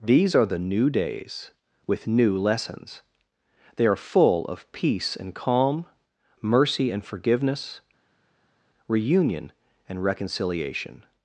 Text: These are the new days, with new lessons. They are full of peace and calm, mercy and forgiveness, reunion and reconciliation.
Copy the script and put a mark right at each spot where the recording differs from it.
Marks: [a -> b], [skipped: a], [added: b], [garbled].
These are the new days, with new lessons. They are full of peace and calm, mercy and forgiveness, reunion and reconciliation.